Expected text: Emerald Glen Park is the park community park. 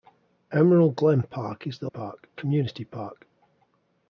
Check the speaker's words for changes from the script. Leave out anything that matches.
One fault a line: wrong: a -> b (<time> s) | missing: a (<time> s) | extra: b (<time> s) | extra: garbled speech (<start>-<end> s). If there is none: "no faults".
no faults